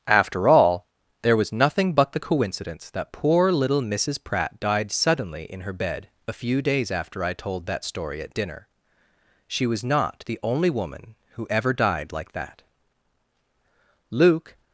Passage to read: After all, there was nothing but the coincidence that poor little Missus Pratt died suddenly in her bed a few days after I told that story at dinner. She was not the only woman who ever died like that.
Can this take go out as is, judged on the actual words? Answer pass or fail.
fail